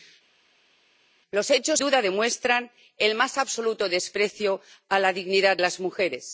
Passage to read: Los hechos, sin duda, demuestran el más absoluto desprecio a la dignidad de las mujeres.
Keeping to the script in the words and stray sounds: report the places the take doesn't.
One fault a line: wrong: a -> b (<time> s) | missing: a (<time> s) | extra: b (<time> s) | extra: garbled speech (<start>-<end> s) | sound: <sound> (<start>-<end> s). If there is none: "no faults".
missing: sin (1.8 s)
missing: de (5.6 s)